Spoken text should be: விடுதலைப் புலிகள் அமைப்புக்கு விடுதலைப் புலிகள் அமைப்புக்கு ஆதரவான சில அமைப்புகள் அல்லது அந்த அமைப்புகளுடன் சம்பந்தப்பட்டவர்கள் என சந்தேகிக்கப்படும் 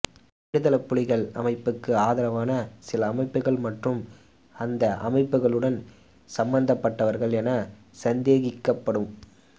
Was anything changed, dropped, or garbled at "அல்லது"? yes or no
yes